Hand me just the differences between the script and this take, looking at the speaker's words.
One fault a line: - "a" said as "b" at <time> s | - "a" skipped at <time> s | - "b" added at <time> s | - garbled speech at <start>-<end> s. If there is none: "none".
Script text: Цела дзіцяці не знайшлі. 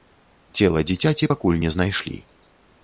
- "пакуль" added at 1.3 s